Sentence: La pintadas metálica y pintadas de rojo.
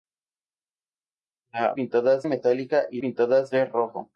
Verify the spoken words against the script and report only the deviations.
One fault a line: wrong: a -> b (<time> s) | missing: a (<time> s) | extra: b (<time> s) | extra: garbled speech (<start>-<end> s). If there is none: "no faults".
no faults